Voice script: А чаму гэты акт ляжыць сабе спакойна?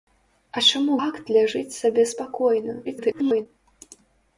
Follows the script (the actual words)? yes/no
no